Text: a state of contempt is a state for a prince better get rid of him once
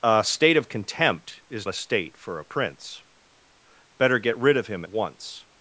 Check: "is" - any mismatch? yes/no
no